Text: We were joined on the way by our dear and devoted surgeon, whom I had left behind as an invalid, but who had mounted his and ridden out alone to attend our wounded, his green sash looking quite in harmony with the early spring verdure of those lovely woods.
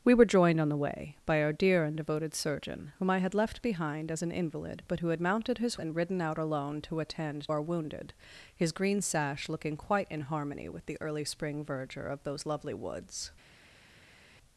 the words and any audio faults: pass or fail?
pass